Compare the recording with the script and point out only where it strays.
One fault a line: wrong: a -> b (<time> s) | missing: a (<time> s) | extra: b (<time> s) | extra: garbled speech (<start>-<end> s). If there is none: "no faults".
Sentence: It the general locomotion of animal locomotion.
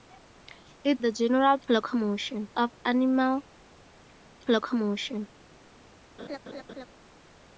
no faults